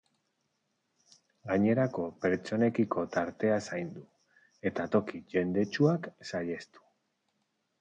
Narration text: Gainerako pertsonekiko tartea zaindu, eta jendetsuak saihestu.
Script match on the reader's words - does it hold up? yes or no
no